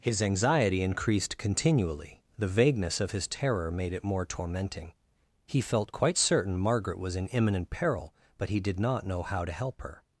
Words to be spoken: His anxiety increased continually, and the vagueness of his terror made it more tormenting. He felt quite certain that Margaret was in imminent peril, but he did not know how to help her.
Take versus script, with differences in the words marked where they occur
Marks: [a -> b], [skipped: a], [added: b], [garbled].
His anxiety increased continually, [skipped: and] the vagueness of his terror made it more tormenting. He felt quite certain [skipped: that] Margaret was in imminent peril, but he did not know how to help her.